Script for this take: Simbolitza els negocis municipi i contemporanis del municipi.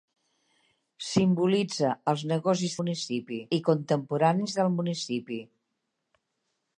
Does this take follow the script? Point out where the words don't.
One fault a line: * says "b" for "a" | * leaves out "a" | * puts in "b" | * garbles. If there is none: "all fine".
all fine